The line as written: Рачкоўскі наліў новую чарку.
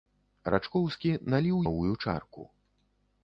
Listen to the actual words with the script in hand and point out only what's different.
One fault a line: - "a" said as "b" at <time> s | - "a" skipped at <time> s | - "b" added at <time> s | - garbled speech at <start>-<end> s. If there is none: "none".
none